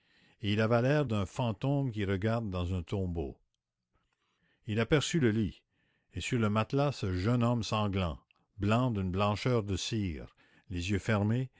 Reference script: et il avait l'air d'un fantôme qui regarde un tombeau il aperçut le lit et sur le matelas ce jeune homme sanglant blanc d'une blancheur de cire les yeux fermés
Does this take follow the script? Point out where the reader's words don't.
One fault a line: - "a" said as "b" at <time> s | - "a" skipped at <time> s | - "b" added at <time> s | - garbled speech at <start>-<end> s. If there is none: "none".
- "dans" added at 2.5 s